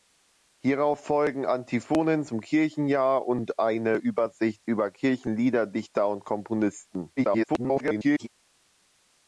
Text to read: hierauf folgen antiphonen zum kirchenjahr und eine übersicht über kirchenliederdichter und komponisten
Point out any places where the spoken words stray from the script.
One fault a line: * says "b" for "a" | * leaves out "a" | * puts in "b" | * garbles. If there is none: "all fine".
* garbles